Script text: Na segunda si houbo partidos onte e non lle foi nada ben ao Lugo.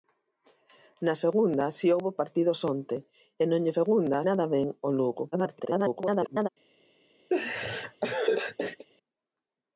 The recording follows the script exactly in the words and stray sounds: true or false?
false